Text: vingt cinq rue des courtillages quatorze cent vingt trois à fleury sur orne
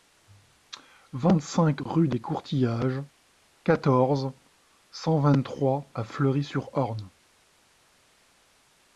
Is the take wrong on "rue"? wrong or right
right